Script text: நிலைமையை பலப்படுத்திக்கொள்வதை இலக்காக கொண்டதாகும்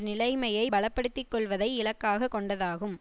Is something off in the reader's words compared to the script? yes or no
no